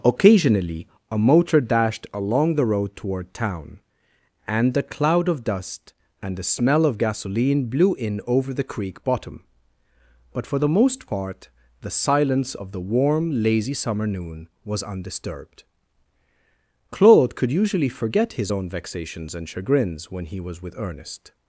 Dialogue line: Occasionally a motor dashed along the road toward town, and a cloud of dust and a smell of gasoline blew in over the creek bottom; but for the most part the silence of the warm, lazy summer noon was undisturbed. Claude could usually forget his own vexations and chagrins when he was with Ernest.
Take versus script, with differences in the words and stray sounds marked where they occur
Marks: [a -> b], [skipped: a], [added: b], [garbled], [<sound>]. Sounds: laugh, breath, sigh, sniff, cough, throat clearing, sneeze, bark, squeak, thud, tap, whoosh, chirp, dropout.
Occasionally a motor dashed along the road toward town, and [a -> the] cloud of dust and [a -> the] smell of gasoline blew in over the creek bottom; but for the most part the silence of the warm, lazy summer noon was undisturbed. Claude could usually forget his own vexations and chagrins when he was with Ernest.